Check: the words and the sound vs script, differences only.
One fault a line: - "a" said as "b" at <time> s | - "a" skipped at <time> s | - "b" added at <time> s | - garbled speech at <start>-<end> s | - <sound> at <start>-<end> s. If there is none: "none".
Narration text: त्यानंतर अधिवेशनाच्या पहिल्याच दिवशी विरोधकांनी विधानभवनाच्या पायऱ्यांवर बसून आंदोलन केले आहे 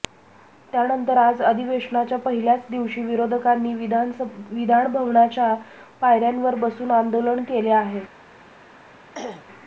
- "आज" added at 1.2 s
- throat clearing at 9.1-9.5 s